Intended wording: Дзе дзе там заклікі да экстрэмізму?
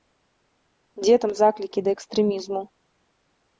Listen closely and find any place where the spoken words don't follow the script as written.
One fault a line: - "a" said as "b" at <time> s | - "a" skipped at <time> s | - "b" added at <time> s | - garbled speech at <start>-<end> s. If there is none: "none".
- "дзе" skipped at 1.1 s